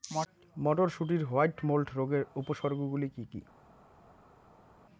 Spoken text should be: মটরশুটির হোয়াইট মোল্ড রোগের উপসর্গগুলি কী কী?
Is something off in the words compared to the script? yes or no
no